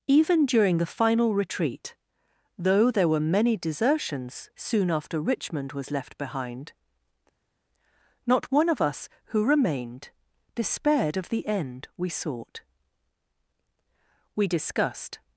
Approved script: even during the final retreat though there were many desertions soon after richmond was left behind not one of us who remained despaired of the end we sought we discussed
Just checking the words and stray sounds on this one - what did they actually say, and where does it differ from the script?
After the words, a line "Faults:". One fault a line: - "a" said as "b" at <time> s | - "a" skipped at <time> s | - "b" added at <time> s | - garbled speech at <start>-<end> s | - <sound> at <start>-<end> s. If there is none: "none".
even during the final retreat though there were many desertions soon after richmond was left behind not one of us who remained despaired of the end we sought we discussed
Faults:
none